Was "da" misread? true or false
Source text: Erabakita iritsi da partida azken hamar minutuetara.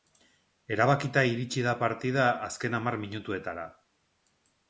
false